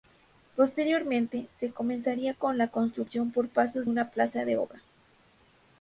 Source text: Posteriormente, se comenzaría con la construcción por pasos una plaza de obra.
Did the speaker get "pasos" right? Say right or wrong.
right